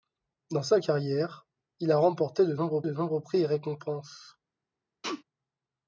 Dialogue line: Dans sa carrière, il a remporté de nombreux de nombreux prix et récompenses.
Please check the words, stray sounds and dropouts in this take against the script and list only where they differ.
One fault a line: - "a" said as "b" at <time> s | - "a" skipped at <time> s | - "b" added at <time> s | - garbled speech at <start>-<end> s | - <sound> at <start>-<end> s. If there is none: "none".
- sneeze at 5.0-5.2 s